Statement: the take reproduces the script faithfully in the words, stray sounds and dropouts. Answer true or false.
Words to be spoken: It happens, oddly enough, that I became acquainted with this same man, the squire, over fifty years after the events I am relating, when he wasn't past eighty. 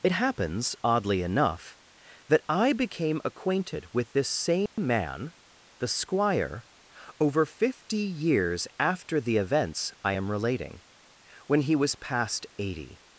false